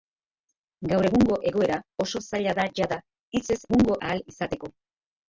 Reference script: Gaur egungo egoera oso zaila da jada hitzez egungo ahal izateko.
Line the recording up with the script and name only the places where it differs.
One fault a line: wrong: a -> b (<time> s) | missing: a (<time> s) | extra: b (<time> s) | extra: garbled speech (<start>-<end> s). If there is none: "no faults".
no faults